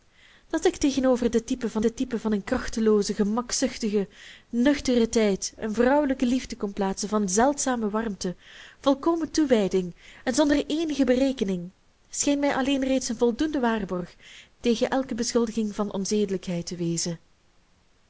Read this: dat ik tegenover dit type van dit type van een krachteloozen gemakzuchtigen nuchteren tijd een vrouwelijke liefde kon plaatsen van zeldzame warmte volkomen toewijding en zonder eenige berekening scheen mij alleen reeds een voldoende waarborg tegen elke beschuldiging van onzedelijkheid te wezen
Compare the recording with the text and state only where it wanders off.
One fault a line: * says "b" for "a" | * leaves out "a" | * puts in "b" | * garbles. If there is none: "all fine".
all fine